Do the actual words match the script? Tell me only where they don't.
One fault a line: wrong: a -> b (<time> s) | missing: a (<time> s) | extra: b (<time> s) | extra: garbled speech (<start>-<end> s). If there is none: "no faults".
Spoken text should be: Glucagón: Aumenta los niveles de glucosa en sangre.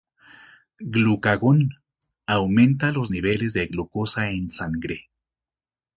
no faults